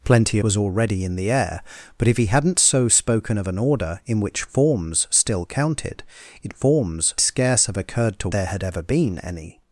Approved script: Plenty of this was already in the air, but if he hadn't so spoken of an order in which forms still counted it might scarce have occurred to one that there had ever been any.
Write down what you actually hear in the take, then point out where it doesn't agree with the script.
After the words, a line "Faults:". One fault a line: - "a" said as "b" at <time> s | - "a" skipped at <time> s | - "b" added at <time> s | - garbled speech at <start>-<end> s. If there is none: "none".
Plenty was already in the air, but if he hadn't so spoken of an order in which forms still counted it forms scarce have occurred to there had ever been any.
Faults:
- "of this" skipped at 0.4 s
- "might" said as "forms" at 6.5 s
- "one that" skipped at 8.3 s